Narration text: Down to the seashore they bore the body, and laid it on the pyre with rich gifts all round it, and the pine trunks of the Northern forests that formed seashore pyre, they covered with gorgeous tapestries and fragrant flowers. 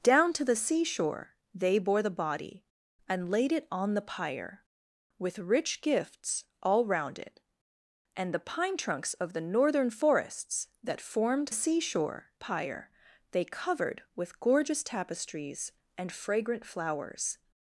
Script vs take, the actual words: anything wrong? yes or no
no